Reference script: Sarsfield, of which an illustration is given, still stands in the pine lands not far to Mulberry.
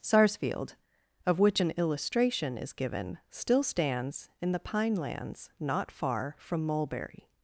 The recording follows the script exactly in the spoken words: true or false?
false